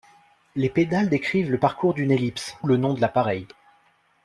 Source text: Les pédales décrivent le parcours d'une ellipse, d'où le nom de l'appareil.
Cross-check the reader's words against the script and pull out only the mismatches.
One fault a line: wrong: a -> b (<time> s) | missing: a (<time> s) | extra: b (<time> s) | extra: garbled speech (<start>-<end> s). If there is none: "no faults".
missing: d'où (2.5 s)